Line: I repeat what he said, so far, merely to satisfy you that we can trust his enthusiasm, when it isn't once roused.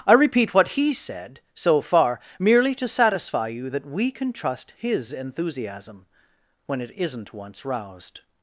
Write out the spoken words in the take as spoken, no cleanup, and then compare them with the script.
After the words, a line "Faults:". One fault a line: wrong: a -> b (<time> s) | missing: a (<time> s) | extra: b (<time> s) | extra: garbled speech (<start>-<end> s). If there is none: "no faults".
I repeat what he said, so far, merely to satisfy you that we can trust his enthusiasm, when it isn't once roused.
Faults:
no faults